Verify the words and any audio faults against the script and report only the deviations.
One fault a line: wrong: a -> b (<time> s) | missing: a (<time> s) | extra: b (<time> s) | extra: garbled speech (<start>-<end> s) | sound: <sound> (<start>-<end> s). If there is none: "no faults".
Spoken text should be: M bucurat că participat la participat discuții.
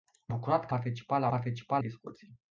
no faults